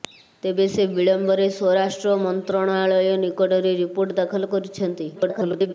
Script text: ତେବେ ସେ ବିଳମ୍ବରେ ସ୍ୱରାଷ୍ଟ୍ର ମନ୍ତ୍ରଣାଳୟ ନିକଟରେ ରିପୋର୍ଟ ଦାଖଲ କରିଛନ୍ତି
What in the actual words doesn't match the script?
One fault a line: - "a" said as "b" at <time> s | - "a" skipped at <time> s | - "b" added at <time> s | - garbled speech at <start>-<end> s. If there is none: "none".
- garbled speech at 5.1-5.7 s